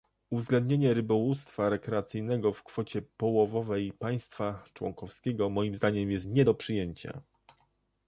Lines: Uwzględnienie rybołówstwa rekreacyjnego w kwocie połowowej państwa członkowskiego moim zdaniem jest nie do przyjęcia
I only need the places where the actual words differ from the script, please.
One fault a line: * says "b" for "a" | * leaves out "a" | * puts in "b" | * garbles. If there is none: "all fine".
all fine